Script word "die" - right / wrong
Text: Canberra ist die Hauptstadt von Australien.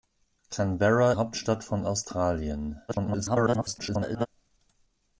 wrong